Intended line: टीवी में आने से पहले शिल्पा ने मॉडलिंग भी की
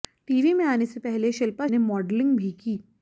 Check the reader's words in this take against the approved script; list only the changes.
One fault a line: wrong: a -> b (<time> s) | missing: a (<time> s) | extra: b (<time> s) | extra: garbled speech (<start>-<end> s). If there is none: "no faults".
no faults